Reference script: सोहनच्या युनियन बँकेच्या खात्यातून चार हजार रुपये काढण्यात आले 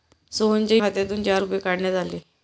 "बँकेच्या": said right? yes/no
no